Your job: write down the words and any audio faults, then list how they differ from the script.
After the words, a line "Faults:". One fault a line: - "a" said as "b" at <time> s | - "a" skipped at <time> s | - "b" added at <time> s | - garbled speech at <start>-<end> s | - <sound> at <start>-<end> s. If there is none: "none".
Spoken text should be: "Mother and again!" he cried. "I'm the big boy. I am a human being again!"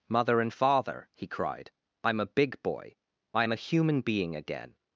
"Mother and father!" he cried. "I'm a big boy. I am a human being again!"
Faults:
- "again" said as "father" at 0.5 s
- "the" said as "a" at 2.2 s